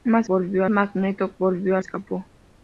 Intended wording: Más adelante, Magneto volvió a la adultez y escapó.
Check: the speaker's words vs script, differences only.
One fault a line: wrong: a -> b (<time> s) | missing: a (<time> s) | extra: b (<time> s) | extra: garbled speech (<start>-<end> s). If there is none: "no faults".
wrong: adelante -> volvió (0.3 s)
missing: la adultez y (1.8 s)